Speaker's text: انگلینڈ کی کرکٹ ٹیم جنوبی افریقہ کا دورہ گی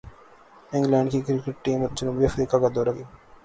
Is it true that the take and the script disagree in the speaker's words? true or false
false